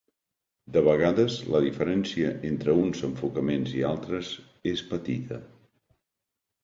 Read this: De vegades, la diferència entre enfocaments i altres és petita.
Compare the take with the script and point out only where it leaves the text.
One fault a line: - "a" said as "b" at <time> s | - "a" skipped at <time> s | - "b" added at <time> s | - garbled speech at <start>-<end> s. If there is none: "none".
- "uns" added at 2.8 s